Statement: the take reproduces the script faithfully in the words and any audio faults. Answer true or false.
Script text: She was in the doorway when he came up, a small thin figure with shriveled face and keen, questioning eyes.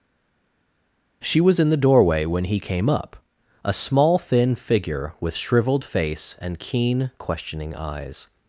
true